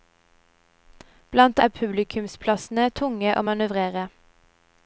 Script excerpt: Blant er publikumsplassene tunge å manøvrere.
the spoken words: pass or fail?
pass